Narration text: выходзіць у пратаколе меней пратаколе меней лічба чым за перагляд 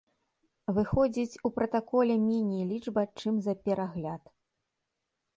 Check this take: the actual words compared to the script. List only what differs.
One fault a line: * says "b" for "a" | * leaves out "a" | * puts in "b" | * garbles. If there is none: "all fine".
* leaves out "пратаколе меней"